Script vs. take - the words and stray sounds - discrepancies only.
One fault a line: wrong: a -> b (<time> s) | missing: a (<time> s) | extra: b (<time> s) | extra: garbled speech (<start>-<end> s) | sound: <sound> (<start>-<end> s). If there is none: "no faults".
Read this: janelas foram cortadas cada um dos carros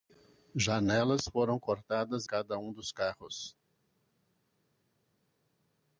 no faults